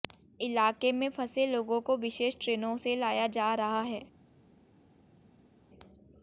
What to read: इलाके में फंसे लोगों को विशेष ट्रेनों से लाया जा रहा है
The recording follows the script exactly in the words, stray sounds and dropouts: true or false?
true